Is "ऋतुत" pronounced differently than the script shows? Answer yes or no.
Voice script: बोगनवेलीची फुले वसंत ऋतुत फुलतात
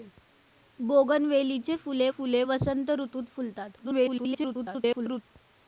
no